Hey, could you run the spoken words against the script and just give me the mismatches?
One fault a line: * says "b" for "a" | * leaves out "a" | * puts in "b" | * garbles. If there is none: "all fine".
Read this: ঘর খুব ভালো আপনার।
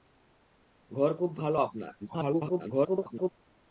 * garbles